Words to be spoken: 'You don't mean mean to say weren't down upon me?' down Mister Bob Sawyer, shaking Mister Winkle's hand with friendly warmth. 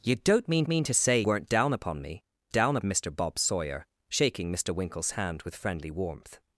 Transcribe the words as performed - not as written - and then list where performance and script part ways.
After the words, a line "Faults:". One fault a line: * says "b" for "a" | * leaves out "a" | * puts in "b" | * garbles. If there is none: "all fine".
'You don't mean mean to say weren't down upon me?' down Mister Bob Sawyer, shaking Mister Winkle's hand with friendly warmth.
Faults:
all fine